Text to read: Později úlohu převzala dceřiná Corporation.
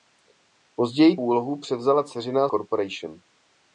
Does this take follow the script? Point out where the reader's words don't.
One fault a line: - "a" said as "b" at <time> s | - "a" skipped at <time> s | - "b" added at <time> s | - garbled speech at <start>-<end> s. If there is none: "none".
none